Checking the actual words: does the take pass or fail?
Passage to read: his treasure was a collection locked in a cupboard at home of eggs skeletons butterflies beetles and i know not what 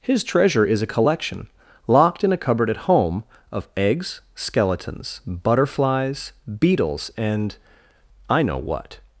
fail